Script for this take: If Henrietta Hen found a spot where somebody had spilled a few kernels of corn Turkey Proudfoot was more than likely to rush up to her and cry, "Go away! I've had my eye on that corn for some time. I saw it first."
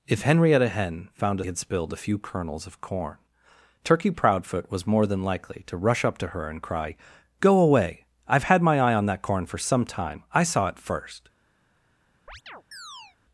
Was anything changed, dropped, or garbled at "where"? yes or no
yes